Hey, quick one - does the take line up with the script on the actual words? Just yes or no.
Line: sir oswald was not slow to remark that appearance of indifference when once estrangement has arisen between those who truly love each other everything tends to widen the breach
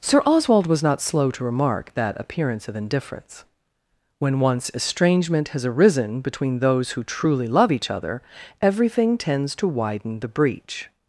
yes